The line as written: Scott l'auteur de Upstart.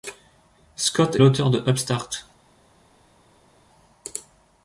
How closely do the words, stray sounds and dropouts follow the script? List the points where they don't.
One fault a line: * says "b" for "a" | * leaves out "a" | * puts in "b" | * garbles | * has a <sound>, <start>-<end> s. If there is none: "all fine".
all fine